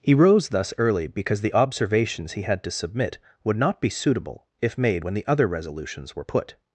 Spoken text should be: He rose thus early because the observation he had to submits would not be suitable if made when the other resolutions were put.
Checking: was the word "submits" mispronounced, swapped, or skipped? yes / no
yes